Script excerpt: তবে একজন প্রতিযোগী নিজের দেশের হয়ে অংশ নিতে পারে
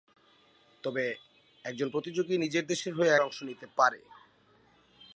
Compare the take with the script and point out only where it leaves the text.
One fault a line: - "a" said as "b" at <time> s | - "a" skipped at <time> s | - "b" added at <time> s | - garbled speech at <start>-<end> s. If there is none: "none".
none